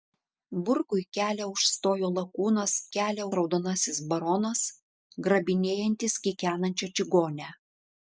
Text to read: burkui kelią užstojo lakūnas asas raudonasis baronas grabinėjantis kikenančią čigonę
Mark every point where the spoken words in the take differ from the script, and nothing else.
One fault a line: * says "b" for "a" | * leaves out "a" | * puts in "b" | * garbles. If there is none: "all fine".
* says "kelią" for "asas"